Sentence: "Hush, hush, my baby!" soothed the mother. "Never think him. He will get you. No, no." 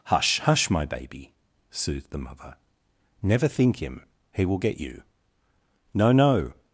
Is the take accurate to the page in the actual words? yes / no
yes